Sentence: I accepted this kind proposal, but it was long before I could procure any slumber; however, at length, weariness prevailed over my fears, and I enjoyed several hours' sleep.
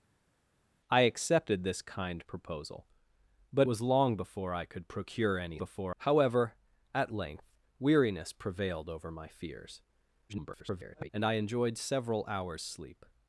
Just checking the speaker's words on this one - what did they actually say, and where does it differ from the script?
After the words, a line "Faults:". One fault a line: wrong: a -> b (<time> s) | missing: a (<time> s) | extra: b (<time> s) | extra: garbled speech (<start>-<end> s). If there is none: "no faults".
I accepted this kind proposal, but was long before I could procure any before; however, at length, weariness prevailed over my fears, [garbled] and I enjoyed several hours' sleep.
Faults:
missing: it (3.7 s)
wrong: slumber -> before (5.6 s)
extra: garbled speech (10.3-11.1 s)